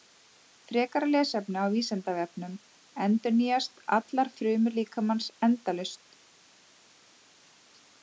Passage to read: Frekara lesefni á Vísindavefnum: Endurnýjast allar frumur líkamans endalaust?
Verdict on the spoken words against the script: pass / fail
pass